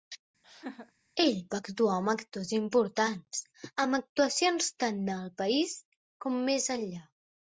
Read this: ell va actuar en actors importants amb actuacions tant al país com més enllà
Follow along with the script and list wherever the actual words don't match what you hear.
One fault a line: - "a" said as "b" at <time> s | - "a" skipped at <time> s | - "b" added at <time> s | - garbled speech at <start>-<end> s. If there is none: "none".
- "en" said as "amb" at 1.9 s